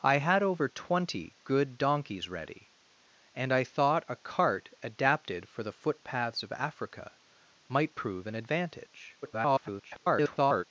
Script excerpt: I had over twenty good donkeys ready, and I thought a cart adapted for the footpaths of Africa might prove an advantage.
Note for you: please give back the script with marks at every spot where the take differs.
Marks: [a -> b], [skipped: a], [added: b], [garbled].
I had over twenty good donkeys ready, and I thought a cart adapted for the footpaths of Africa might prove an advantage. [garbled]